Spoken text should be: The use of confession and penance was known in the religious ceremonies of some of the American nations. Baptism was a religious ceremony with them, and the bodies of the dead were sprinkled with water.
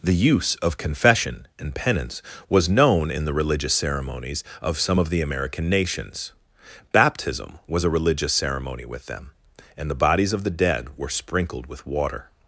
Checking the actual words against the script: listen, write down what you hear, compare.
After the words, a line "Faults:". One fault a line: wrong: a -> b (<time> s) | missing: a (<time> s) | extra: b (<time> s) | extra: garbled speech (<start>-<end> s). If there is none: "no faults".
The use of confession and penance was known in the religious ceremonies of some of the American nations. Baptism was a religious ceremony with them, and the bodies of the dead were sprinkled with water.
Faults:
no faults